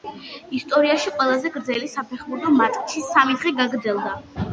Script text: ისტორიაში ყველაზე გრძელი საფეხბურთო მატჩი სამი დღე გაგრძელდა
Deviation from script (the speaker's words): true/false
false